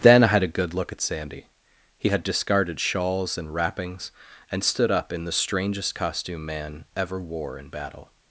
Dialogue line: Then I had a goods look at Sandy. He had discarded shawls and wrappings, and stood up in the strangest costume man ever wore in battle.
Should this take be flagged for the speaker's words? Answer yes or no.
yes